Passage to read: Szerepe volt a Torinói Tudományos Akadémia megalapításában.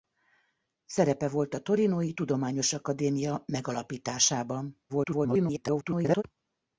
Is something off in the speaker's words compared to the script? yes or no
yes